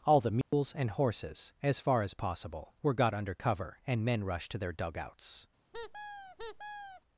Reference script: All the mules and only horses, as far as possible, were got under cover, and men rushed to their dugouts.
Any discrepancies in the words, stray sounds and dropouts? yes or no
yes